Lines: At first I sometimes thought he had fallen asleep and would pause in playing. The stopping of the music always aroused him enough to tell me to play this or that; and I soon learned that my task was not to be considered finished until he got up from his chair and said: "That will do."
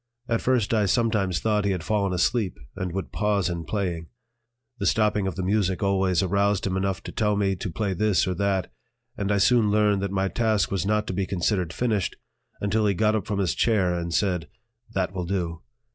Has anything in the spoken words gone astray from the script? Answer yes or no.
no